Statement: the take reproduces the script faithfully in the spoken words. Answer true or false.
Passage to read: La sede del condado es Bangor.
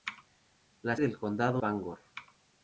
false